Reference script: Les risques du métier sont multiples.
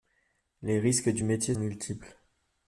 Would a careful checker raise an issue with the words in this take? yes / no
yes